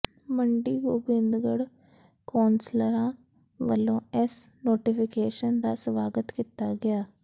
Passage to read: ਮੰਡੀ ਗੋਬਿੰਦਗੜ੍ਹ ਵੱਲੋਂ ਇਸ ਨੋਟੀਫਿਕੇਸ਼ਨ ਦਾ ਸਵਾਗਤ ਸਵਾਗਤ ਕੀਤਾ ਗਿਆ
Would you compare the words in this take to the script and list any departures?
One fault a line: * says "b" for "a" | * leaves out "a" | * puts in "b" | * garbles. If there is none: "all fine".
* puts in "ਕੌਂਸਲਰਾਂ"
* leaves out "ਸਵਾਗਤ"